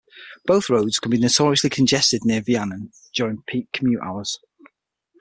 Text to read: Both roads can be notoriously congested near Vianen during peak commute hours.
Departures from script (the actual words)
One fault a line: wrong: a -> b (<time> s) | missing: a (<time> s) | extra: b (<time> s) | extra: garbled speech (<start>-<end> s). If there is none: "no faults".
no faults